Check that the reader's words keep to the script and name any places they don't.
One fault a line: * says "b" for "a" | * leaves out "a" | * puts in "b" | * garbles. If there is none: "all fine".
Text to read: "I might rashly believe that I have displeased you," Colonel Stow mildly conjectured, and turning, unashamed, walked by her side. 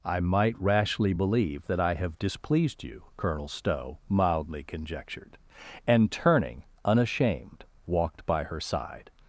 all fine